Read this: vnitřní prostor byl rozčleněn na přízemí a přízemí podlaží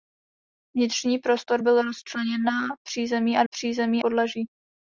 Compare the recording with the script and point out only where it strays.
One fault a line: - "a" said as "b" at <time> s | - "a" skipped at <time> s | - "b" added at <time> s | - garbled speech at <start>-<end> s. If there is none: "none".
none